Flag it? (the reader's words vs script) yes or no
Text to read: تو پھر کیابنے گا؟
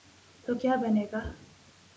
yes